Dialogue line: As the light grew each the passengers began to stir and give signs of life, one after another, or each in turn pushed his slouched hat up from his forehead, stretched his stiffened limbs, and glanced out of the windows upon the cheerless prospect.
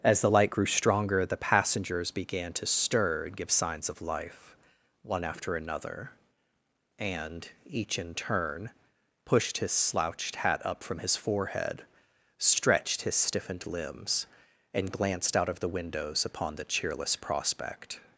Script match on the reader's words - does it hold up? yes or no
no